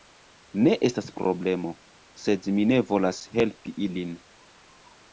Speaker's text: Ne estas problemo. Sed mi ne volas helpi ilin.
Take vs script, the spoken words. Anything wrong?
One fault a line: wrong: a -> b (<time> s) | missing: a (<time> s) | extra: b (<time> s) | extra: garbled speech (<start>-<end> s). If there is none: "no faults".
no faults